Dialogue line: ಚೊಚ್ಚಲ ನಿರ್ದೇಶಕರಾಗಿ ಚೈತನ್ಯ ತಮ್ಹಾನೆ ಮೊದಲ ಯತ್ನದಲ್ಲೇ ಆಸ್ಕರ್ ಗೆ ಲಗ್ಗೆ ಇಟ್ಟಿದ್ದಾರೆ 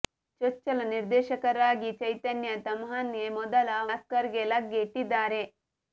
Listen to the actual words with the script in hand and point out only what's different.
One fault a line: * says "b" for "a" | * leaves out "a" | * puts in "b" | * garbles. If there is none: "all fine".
* leaves out "ಯತ್ನದಲ್ಲೇ"